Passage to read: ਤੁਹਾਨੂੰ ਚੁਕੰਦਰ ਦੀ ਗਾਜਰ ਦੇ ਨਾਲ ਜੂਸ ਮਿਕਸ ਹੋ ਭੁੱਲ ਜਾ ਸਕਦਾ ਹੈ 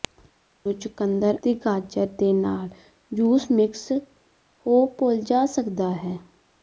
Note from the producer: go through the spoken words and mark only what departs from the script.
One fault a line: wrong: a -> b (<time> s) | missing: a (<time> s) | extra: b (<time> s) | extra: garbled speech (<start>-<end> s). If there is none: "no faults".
no faults